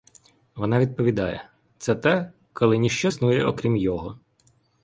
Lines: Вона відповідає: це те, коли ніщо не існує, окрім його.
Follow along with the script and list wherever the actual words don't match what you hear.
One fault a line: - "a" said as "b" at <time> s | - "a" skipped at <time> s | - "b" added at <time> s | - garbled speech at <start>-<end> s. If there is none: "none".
- "не" skipped at 3.1 s